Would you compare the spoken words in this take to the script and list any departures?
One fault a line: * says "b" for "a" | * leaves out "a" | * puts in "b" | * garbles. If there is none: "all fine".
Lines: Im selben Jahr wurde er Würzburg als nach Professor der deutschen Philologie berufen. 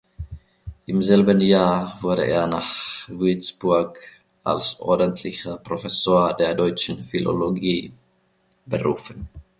* puts in "nach"
* says "ordentlicher" for "nach"